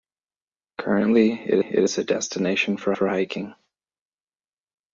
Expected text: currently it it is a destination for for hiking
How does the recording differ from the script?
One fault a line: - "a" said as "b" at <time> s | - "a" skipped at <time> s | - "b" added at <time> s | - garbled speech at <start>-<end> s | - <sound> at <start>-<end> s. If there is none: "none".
none